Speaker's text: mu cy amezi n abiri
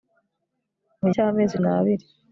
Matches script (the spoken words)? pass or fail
pass